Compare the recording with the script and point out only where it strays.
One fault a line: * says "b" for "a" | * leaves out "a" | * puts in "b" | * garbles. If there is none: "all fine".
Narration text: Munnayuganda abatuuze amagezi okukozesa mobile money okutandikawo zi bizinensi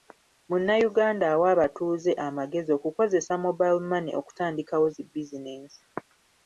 * puts in "awa"